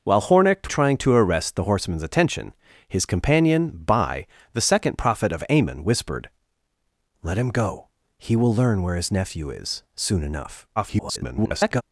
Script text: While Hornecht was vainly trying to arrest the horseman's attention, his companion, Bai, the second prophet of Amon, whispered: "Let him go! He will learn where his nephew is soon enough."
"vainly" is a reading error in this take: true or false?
true